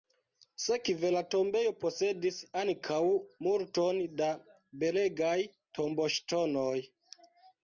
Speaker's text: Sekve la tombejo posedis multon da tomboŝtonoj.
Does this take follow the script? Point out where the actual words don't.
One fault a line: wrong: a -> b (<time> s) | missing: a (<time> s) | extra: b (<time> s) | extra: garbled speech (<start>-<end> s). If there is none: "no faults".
extra: ankaŭ (2.6 s)
extra: belegaj (4.8 s)